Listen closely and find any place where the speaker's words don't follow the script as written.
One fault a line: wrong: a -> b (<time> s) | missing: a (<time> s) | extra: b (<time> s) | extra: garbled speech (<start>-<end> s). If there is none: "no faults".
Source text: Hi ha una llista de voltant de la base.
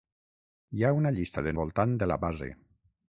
no faults